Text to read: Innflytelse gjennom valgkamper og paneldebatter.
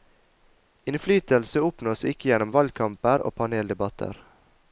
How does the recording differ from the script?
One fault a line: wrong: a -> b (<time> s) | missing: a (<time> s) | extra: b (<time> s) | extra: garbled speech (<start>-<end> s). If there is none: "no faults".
extra: oppnås ikke (1.7 s)